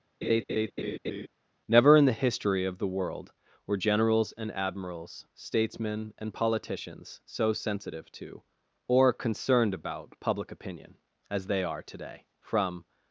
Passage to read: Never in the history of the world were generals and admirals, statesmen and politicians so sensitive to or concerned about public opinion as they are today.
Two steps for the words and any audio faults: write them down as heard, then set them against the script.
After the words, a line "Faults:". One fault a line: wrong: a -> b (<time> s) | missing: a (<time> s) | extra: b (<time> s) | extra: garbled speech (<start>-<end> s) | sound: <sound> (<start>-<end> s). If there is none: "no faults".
Never in the history of the world were generals and admirals, statesmen and politicians so sensitive to or concerned about public opinion as they are today. From
Faults:
sound: laugh (0.2-1.3 s)
extra: From (12.4 s)